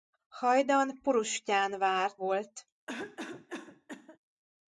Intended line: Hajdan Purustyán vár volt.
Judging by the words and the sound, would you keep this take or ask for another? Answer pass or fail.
fail